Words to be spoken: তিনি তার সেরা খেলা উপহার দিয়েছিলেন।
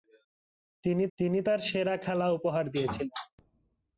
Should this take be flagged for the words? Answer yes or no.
yes